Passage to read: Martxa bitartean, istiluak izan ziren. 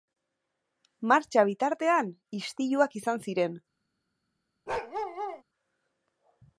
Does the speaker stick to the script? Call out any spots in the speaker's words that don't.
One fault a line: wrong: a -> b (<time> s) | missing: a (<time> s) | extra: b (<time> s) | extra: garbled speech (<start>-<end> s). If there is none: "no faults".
no faults